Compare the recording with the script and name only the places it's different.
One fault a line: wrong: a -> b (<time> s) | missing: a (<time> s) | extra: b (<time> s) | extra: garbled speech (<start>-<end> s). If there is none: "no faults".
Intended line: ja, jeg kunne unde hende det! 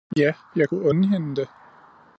no faults